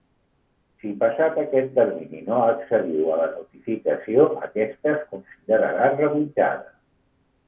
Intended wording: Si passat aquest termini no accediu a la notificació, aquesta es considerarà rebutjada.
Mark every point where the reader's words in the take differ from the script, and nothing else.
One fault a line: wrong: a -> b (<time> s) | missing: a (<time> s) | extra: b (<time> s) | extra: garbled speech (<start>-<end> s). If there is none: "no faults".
no faults